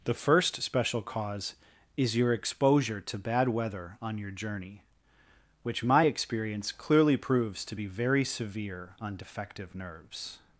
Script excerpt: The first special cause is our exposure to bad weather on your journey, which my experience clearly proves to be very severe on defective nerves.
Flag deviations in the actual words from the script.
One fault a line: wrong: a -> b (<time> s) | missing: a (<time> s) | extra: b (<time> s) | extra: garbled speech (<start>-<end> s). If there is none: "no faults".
wrong: our -> your (2.2 s)